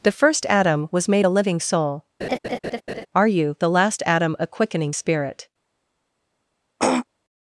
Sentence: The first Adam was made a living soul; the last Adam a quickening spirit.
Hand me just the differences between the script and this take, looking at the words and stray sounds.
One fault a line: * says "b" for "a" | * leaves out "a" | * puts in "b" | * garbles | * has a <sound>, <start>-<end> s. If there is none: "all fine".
* has a laugh, 2.2-3.1 s
* puts in "are you"
* has a throat clearing, 6.8-7.1 s